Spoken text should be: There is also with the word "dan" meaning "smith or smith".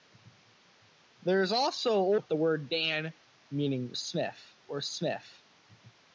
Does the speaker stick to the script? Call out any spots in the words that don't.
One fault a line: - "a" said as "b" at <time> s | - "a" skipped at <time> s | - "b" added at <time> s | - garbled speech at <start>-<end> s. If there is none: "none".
none